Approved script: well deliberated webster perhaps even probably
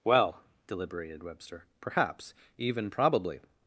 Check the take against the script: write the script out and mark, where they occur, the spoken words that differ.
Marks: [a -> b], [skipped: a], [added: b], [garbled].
well deliberated webster perhaps even probably